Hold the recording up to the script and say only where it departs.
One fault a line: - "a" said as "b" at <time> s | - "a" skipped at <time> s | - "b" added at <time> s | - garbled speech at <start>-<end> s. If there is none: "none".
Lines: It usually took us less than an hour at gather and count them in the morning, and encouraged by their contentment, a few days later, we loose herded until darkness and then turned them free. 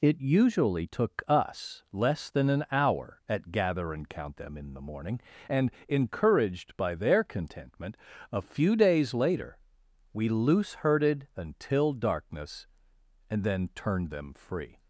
none